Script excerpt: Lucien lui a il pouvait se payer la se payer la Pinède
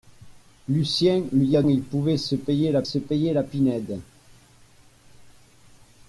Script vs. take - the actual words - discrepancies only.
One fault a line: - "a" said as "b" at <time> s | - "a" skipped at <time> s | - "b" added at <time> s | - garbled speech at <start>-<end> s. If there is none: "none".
none